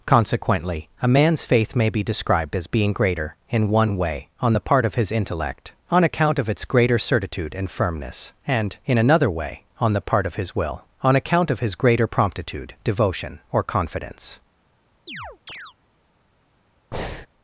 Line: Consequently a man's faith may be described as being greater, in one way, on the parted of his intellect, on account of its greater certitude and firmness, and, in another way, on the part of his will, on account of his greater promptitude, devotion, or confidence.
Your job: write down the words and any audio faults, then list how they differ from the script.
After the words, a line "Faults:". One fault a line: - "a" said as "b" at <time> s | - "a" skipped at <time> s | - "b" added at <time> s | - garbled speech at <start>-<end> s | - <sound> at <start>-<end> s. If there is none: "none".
Consequently a man's faith may be described as being greater, in one way, on the part of his intellect, on account of its greater certitude and firmness, and, in another way, on the part of his will, on account of his greater promptitude, devotion, or confidence.
Faults:
- "parted" said as "part" at 4.6 s
- chirp at 15.1-15.7 s
- breath at 16.9-17.3 s